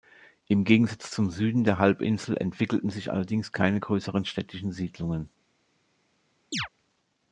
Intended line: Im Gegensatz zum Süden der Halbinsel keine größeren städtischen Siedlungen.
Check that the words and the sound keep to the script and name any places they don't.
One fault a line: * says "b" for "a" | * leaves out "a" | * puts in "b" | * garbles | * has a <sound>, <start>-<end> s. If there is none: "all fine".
* puts in "entwickelten sich allerdings"
* has a chirp, 6.5-6.7 s